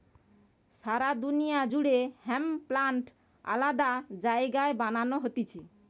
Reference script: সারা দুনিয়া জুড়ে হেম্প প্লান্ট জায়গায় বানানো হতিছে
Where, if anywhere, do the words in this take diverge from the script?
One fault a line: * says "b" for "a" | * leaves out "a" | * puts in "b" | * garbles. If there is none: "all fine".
* puts in "আলাদা"